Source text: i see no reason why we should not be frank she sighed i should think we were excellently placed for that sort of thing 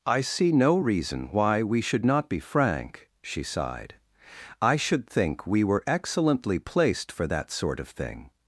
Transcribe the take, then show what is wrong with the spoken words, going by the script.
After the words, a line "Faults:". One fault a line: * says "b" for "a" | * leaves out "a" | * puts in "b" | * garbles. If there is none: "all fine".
i see no reason why we should not be frank she sighed i should think we were excellently placed for that sort of thing
Faults:
all fine